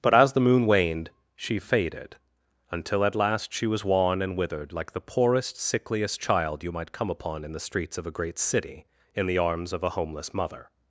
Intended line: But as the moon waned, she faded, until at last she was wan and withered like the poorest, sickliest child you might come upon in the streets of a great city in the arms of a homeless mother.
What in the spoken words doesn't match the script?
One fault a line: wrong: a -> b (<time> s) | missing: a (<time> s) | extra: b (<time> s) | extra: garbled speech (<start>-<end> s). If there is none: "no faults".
no faults